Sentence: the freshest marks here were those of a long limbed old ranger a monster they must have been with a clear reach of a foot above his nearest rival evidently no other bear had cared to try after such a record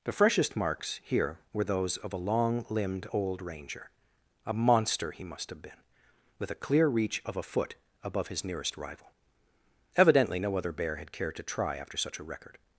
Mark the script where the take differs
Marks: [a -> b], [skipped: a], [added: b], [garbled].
the freshest marks here were those of a long limbed old ranger a monster [they -> he] must have been with a clear reach of a foot above his nearest rival evidently no other bear had cared to try after such a record